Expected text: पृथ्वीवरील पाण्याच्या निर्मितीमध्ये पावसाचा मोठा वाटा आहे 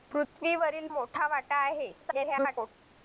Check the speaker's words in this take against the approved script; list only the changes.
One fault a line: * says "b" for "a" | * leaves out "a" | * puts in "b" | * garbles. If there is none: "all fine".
* leaves out "पाण्याच्या निर्मितीमध्ये पावसाचा"
* garbles